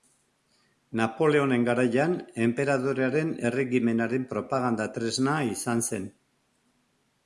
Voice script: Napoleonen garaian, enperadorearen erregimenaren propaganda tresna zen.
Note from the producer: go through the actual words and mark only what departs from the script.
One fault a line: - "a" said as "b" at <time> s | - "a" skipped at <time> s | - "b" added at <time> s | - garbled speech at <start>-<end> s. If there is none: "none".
- "izan" added at 5.6 s